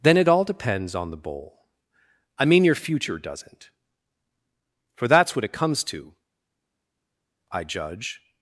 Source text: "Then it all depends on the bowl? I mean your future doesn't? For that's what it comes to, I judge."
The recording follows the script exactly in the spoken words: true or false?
true